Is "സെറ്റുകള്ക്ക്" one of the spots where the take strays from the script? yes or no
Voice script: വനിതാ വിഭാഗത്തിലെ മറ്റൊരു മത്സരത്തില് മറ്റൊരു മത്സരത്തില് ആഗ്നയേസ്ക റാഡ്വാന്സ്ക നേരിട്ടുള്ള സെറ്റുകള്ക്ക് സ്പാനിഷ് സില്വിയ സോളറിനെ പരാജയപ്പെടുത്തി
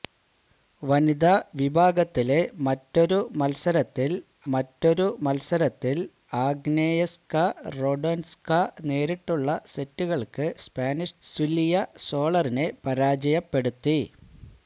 no